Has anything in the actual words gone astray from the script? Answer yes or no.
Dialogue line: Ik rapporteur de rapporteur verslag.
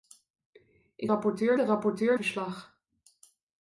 no